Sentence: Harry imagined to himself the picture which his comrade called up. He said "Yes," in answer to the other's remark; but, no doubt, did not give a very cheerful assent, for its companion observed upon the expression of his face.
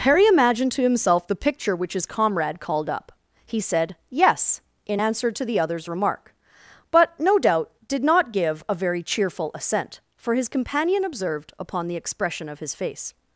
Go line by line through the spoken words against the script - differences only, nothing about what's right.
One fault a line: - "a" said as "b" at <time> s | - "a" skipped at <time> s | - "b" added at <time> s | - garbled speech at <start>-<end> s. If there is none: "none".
- "its" said as "his" at 10.3 s